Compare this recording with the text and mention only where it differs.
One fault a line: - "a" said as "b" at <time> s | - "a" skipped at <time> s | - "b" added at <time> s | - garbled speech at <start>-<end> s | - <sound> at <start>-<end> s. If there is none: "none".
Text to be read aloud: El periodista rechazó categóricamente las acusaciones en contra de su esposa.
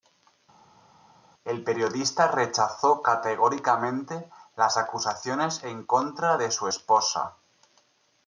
none